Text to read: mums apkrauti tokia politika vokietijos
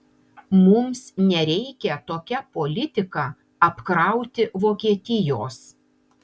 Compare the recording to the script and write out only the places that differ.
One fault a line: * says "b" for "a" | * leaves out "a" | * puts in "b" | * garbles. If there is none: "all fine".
* says "nereikia" for "apkrauti"
* puts in "apkrauti"